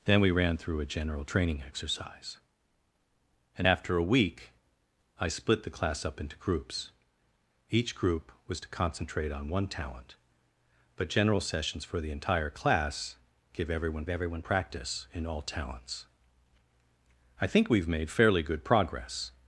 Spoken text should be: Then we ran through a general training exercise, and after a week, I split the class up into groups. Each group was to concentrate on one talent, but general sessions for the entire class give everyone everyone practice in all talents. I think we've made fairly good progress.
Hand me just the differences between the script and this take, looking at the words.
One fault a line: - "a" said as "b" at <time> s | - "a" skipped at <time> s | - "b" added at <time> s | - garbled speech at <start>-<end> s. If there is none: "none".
none